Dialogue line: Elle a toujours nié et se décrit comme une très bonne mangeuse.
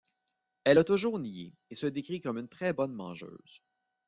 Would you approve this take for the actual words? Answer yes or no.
yes